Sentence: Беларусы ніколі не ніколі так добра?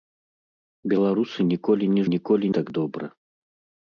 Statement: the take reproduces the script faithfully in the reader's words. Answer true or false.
true